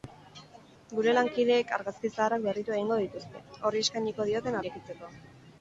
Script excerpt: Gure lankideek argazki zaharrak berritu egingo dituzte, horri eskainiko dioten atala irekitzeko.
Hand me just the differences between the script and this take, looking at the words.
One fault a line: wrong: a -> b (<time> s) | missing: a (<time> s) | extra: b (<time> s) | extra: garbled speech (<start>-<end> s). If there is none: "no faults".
missing: atala (4.6 s)